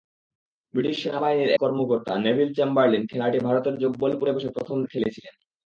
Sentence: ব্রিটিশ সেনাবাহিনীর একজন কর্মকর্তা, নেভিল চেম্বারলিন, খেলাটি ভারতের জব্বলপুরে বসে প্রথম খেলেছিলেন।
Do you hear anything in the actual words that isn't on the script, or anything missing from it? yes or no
yes